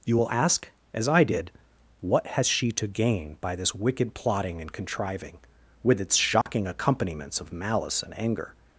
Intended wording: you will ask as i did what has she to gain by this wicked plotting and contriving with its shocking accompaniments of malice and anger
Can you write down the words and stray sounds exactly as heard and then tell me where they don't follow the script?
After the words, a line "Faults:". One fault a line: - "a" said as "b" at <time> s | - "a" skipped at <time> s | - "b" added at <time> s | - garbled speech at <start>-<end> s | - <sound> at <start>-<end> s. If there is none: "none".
you will ask as i did what has she to gain by this wicked plotting and contriving with its shocking accompaniments of malice and anger
Faults:
- dropout at 6.4-6.5 s